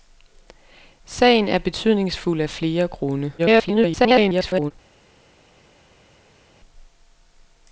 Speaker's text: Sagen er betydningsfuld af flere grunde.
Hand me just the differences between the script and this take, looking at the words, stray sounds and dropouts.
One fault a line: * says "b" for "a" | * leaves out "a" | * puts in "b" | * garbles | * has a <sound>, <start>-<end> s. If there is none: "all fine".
* garbles